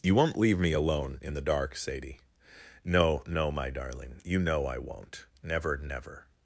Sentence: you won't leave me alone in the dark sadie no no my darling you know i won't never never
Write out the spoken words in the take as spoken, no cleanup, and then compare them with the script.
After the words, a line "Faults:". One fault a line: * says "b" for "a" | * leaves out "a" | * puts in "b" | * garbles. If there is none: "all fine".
you won't leave me alone in the dark sadie no no my darling you know i won't never never
Faults:
all fine